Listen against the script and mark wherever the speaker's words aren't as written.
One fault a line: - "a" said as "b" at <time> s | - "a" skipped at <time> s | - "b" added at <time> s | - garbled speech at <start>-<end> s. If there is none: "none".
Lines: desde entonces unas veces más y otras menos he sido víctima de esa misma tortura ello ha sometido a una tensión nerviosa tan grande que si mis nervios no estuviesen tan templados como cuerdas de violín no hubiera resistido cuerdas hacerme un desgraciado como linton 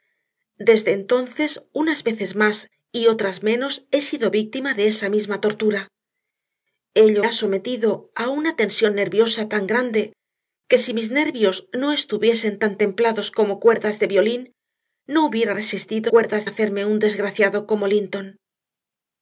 none